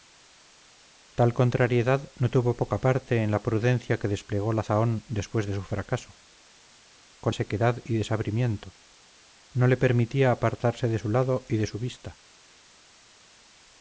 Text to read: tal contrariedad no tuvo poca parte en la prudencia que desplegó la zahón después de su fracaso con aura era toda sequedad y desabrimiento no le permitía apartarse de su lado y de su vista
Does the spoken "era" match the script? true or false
false